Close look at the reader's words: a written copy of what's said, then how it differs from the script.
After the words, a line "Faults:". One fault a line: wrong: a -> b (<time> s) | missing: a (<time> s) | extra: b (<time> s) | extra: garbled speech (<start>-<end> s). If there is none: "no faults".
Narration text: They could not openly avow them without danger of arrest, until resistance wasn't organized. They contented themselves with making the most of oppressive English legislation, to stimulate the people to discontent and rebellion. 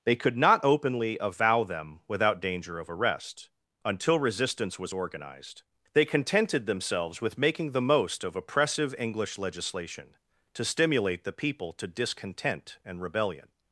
They could not openly avow them without danger of arrest, until resistance was organized. They contented themselves with making the most of oppressive English legislation, to stimulate the people to discontent and rebellion.
Faults:
wrong: wasn't -> was (4.8 s)